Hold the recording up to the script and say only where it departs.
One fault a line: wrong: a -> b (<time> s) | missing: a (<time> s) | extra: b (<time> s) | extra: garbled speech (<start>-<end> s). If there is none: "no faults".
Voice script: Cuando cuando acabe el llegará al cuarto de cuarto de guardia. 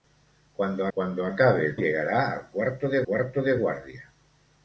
no faults